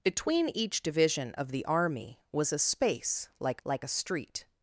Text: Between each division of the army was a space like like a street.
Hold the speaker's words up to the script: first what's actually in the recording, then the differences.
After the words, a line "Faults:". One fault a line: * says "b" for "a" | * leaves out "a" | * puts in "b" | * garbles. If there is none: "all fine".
Between each division of the army was a space like like a street.
Faults:
all fine